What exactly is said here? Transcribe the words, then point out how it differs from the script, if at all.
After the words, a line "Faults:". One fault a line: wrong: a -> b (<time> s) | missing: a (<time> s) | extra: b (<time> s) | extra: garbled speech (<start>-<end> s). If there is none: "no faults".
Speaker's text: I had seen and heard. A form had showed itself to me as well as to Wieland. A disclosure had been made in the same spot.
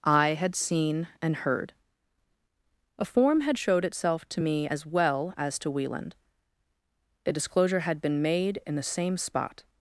I had seen and heard. A form had showed itself to me as well as to Wieland. A disclosure had been made in the same spot.
Faults:
no faults